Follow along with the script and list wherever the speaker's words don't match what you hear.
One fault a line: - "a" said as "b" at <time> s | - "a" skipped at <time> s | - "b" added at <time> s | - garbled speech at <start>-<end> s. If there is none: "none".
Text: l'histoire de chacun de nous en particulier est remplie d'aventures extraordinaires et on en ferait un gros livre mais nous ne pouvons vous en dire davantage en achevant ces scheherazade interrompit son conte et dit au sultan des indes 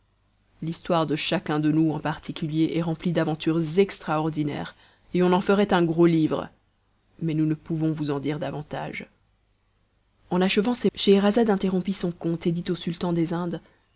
none